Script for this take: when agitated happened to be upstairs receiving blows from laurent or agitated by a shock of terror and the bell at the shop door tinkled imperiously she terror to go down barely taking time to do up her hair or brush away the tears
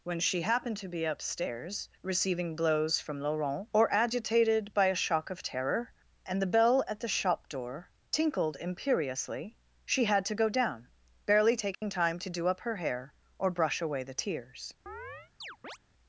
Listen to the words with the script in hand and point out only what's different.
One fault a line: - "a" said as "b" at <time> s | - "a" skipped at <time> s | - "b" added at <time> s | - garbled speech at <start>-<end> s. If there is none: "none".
- "agitated" said as "she" at 0.2 s
- "terror" said as "had" at 10.1 s